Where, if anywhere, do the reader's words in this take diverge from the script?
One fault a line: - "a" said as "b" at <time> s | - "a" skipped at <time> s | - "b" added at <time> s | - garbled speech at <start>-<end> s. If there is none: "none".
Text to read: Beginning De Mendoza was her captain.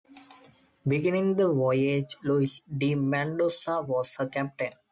- "the voyage Luis" added at 1.4 s